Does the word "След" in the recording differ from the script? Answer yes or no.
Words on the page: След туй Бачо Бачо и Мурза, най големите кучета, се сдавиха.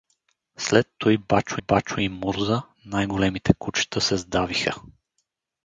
no